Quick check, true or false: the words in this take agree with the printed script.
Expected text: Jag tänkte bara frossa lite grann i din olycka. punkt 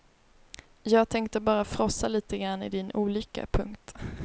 true